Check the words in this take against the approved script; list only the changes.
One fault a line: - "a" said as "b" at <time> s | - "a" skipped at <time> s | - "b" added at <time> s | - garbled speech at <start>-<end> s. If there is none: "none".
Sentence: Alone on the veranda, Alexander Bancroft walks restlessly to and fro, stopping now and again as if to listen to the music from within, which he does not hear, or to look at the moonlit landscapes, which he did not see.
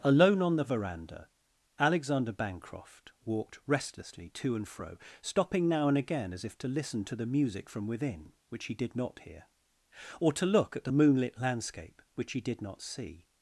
- "walks" said as "walked" at 3.2 s
- "does" said as "did" at 8.7 s
- "landscapes" said as "landscape" at 11.4 s